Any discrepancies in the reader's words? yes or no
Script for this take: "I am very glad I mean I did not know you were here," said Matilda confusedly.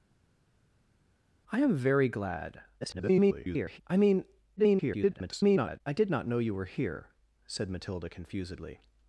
yes